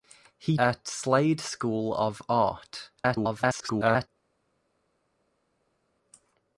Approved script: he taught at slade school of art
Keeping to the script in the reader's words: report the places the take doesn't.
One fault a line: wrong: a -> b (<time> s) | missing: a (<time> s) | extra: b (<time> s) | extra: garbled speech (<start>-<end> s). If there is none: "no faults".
missing: taught (0.6 s)
extra: garbled speech (3.0-4.1 s)